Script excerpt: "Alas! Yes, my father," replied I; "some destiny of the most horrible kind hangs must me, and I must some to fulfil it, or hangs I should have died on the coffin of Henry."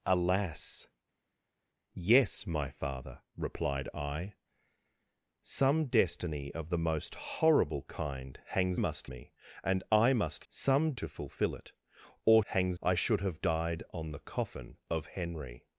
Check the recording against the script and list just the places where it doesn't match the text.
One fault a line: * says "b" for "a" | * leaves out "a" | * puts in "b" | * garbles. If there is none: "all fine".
all fine